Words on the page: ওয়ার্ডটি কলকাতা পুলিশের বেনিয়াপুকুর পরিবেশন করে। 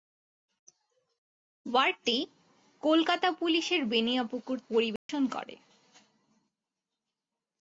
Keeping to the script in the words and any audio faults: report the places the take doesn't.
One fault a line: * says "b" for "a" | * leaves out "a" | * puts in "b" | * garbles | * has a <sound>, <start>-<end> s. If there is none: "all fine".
* has a dropout, 5.0-5.1 s